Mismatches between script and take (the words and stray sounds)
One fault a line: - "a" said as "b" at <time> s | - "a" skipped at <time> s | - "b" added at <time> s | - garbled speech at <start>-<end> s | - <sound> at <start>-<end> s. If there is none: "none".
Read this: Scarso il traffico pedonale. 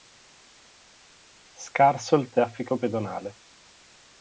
none